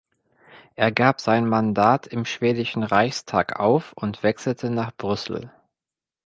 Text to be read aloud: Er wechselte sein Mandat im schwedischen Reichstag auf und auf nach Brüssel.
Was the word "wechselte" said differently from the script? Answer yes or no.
yes